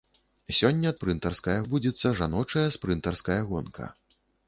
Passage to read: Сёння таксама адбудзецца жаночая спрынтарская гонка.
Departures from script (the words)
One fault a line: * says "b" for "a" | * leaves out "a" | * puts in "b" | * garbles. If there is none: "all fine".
* says "спрынтарская" for "таксама"